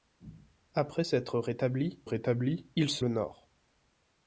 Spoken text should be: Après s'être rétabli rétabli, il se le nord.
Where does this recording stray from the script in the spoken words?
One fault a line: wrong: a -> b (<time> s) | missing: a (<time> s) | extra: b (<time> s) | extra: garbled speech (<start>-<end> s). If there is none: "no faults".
no faults